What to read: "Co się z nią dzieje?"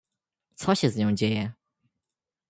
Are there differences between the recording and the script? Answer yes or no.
no